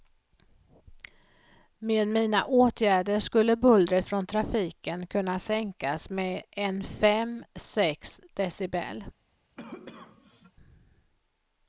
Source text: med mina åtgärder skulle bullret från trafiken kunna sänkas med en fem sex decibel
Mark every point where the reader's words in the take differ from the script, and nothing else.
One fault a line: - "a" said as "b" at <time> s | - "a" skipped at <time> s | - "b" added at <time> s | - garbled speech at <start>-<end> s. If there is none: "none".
none